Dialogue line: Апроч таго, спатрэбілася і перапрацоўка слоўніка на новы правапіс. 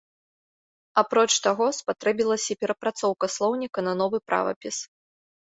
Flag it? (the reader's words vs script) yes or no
no